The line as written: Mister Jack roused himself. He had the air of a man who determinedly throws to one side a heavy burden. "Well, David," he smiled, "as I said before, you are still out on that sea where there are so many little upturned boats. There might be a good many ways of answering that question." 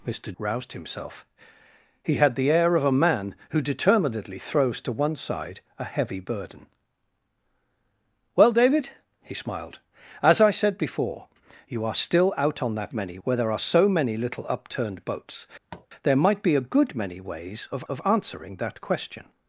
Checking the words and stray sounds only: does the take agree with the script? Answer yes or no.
no